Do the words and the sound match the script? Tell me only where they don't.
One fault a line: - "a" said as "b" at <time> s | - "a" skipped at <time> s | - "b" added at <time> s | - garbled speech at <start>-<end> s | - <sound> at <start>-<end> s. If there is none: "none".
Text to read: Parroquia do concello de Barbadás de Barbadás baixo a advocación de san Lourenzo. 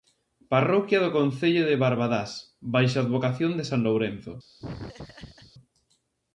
- "de Barbadás" skipped at 2.3 s
- laugh at 4.6-5.5 s